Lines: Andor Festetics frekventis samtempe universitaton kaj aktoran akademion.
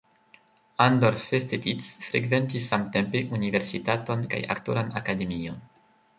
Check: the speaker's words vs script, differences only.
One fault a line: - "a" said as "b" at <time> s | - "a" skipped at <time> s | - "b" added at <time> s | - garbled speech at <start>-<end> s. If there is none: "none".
none